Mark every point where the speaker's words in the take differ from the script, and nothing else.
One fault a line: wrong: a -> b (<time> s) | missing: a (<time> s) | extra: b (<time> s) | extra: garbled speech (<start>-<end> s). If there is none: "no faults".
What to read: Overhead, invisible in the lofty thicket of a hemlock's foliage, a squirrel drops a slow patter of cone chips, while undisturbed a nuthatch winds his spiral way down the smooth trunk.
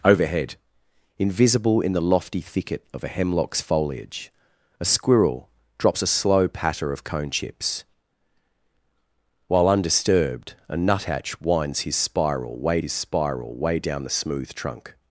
extra: his spiral way (12.8 s)